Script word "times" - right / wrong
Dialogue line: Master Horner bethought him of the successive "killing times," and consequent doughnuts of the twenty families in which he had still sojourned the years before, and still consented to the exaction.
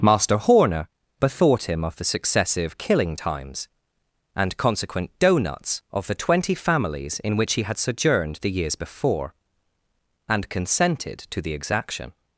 right